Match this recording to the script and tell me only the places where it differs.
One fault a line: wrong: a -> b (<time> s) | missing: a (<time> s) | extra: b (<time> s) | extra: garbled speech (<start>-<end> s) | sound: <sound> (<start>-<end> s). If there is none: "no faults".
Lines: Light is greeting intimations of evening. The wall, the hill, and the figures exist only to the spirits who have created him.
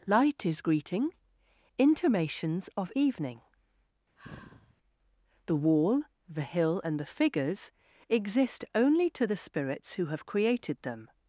sound: sigh (4.2-4.8 s)
wrong: him -> them (10.8 s)